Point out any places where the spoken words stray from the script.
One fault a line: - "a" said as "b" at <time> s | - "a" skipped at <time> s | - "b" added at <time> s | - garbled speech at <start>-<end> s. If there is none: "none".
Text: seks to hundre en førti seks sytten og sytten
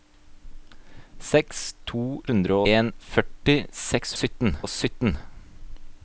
none